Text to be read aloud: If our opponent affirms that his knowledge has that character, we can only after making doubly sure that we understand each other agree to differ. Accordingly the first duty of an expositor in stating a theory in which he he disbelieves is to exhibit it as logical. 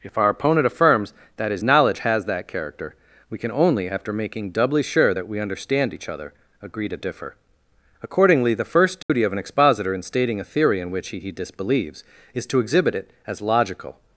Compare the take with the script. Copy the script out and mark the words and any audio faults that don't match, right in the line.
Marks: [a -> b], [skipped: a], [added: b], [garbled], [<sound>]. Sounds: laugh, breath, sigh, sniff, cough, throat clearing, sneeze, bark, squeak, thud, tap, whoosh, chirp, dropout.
If our opponent affirms that his knowledge has that character, we can only after making doubly sure that we understand each other agree to differ. Accordingly the first duty [dropout] of an expositor in stating a theory in which he he disbelieves is to exhibit it as logical.